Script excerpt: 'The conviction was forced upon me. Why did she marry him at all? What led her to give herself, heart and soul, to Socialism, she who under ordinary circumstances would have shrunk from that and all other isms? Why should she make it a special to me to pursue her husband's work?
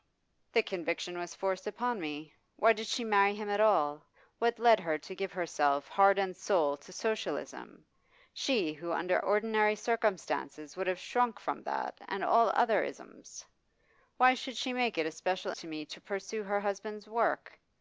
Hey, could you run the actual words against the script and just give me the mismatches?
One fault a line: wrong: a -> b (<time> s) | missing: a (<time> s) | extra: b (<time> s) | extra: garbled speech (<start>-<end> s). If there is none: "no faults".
no faults